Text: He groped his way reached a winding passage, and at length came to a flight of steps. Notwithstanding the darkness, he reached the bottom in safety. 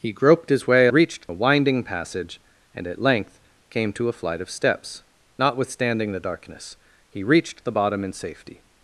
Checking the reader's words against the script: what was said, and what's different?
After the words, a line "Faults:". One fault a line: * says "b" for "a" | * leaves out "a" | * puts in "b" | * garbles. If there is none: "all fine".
He groped his way reached a winding passage, and at length came to a flight of steps. Notwithstanding the darkness, he reached the bottom in safety.
Faults:
all fine